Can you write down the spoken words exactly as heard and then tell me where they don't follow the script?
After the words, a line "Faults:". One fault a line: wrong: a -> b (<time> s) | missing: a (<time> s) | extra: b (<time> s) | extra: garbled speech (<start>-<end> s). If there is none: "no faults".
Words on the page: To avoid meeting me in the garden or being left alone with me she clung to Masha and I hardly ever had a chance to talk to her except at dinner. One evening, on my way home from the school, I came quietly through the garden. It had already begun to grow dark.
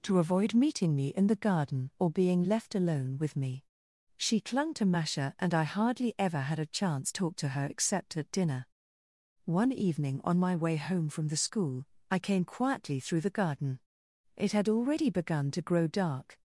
To avoid meeting me in the garden or being left alone with me she clung to Masha and I hardly ever had a chance talk to her except at dinner. One evening, on my way home from the school, I came quietly through the garden. It had already begun to grow dark.
Faults:
missing: to (7.1 s)